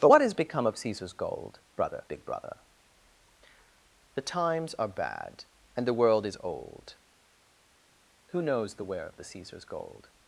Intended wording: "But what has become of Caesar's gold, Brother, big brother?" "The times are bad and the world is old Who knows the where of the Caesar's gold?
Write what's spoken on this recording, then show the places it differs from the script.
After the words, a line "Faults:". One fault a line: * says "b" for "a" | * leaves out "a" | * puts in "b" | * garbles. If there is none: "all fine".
"But what has become of Caesar's gold, Brother, big brother?" "The times are bad and the world is old Who knows the where of the Caesar's gold?
Faults:
all fine